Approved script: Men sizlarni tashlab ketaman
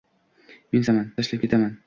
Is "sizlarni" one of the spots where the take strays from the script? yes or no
yes